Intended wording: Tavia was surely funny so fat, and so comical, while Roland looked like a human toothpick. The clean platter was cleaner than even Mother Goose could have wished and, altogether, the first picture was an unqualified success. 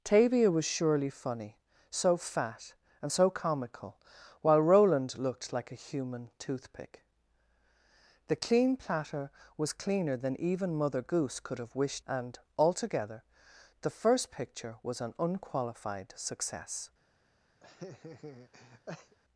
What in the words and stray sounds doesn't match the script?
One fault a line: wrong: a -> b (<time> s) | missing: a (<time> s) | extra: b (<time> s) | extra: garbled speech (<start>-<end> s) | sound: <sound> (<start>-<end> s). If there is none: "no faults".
sound: laugh (17.6-19.2 s)